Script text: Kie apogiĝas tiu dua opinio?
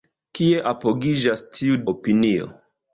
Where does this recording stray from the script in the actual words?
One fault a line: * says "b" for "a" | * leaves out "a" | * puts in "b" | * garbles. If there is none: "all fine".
* leaves out "dua"